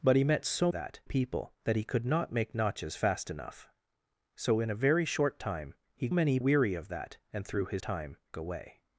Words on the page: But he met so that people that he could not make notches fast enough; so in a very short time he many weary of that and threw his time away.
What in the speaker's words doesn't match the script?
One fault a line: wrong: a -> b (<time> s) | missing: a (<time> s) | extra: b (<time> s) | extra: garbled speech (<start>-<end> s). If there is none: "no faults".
no faults